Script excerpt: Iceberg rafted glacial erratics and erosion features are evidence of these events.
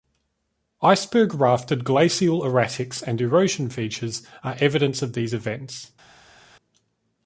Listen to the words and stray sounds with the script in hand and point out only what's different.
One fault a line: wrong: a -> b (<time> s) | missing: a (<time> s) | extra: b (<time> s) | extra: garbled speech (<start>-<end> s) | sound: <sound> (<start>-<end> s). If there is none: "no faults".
no faults